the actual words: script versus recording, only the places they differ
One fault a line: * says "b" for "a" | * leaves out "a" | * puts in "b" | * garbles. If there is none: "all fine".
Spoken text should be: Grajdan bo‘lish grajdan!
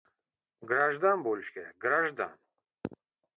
* puts in "kerak"